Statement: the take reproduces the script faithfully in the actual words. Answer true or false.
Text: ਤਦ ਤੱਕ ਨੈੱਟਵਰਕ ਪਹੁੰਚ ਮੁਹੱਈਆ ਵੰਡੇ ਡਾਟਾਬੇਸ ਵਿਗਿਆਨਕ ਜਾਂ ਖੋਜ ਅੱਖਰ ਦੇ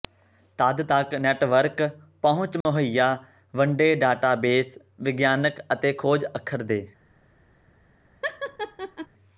false